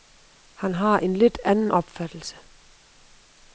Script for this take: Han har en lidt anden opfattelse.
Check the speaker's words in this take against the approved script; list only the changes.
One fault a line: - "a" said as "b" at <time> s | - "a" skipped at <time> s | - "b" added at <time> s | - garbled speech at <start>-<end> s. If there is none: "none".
none